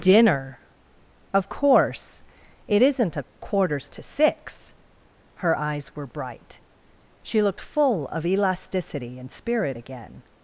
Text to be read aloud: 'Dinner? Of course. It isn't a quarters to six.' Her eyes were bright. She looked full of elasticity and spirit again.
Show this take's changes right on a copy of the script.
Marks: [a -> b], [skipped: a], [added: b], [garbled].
'Dinner? Of course. It isn't a quarters to six.' Her eyes were bright. She looked full of elasticity and spirit again.